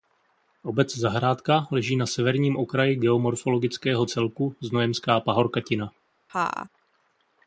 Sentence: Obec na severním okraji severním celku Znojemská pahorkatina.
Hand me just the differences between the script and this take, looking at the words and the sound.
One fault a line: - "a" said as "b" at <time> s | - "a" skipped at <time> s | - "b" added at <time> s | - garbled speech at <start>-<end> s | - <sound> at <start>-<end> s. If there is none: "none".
- "zahrádka leží" added at 1.0 s
- "severním" said as "geomorfologického" at 3.0 s
- laugh at 6.3-6.7 s